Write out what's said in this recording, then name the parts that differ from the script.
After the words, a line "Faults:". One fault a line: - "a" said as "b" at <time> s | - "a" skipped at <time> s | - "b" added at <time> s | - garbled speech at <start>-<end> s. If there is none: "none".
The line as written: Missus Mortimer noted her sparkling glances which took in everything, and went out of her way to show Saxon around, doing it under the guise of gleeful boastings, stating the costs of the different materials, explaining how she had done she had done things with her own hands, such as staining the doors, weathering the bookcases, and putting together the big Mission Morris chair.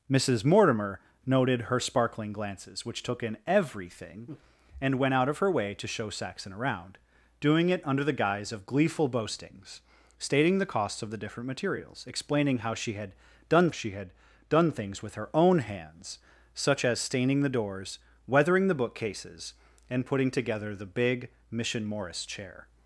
Missus Mortimer noted her sparkling glances which took in everything, and went out of her way to show Saxon around, doing it under the guise of gleeful boastings, stating the costs of the different materials, explaining how she had done she had done things with her own hands, such as staining the doors, weathering the bookcases, and putting together the big Mission Morris chair.
Faults:
none